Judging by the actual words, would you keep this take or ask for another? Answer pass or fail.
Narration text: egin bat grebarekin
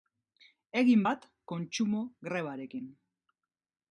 fail